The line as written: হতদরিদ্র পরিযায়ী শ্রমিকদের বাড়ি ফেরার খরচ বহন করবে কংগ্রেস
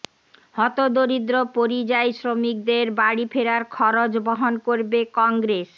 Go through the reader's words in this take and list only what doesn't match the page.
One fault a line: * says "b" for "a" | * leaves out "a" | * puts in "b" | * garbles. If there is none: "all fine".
all fine